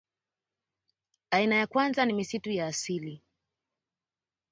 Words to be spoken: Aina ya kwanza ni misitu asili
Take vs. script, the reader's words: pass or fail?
fail